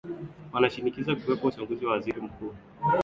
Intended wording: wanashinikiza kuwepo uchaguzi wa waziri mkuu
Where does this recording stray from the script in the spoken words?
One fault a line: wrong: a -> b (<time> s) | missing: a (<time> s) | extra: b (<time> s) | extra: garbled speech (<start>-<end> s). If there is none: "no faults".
no faults